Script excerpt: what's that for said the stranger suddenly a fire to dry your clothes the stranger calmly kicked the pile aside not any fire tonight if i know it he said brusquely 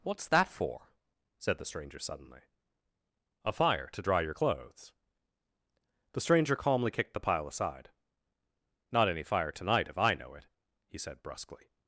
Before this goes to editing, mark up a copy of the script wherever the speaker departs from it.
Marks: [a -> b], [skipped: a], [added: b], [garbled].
what's that for said the stranger suddenly a fire to dry your clothes the stranger calmly kicked the pile aside not any fire tonight if i know it he said brusquely